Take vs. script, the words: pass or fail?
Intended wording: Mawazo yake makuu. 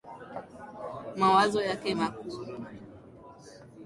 pass